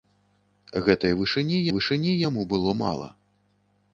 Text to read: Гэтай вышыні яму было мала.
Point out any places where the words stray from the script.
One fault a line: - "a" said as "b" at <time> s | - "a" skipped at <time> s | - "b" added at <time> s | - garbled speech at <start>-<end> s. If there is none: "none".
- "вышыні" added at 1.7 s